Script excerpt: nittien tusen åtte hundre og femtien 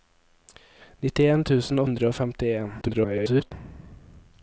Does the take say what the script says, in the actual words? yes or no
no